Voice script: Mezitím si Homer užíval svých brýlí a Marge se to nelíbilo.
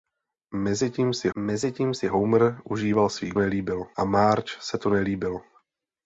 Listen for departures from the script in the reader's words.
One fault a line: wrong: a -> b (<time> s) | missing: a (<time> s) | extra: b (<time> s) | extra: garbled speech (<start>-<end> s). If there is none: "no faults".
extra: mezitím si (1.4 s)
wrong: brýlí -> nelíbilo (3.3 s)